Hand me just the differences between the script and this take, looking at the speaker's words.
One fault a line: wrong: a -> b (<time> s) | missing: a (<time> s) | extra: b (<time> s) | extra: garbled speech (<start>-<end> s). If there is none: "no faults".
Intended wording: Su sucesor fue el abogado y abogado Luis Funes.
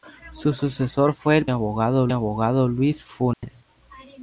no faults